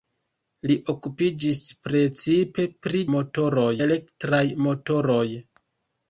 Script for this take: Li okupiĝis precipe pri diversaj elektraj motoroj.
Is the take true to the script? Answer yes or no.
no